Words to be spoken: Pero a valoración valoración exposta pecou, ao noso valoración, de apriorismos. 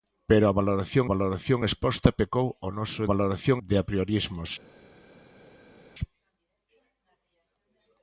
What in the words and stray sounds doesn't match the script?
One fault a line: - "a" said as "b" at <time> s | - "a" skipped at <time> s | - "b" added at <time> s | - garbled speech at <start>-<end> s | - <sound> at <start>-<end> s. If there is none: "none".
none